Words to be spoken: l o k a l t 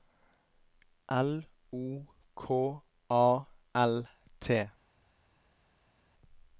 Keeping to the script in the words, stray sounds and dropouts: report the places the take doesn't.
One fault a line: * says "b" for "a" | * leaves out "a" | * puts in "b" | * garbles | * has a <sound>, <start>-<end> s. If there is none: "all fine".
all fine